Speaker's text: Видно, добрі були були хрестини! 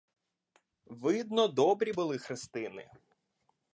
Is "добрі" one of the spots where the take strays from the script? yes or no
no